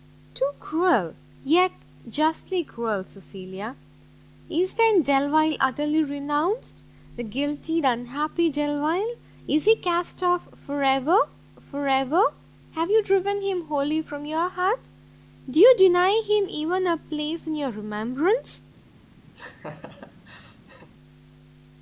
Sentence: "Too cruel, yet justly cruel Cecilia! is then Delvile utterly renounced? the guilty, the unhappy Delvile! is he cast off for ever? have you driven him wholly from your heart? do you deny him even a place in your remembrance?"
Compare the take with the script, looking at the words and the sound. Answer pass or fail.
fail